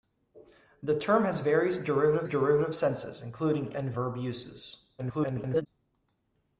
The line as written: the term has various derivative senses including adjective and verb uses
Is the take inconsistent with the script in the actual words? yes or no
yes